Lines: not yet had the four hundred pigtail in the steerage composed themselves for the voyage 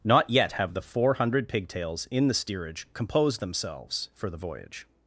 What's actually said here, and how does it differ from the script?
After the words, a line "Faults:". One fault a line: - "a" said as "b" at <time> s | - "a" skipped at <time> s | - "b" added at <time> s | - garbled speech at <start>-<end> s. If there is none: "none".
not yet have the four hundred pigtails in the steerage composed themselves for the voyage
Faults:
- "had" said as "have" at 0.5 s
- "pigtail" said as "pigtails" at 1.5 s